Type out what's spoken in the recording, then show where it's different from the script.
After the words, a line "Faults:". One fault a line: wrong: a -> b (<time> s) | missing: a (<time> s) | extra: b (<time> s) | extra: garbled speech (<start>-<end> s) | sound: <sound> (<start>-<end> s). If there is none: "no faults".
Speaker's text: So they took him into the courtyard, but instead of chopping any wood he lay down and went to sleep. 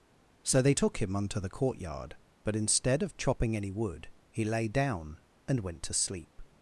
So they took him unto the courtyard, but instead of chopping any wood he lay down and went to sleep.
Faults:
wrong: into -> unto (1.2 s)